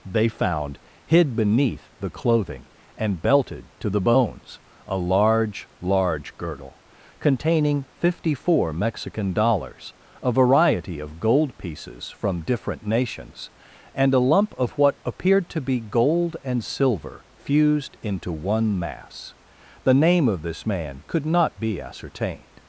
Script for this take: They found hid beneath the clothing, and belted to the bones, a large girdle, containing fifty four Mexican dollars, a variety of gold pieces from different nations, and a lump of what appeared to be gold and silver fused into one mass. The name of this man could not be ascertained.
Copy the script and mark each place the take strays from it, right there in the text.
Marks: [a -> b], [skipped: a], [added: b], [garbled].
They found hid beneath the clothing, and belted to the bones, a large [added: large] girdle, containing fifty four Mexican dollars, a variety of gold pieces from different nations, and a lump of what appeared to be gold and silver fused into one mass. The name of this man could not be ascertained.